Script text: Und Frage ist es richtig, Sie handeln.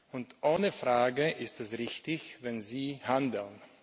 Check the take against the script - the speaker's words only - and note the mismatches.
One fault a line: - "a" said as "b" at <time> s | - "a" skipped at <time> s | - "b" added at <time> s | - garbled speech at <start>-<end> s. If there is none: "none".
- "ohne" added at 0.4 s
- "wenn" added at 2.4 s